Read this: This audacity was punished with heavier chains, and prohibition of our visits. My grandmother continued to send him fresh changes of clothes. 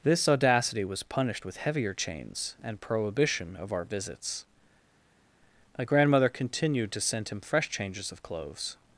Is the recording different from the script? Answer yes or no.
no